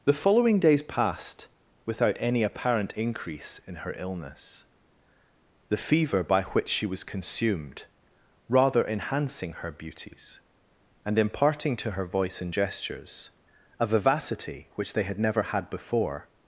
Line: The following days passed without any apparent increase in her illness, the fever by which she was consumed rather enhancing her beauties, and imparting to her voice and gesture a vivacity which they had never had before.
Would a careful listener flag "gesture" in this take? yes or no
yes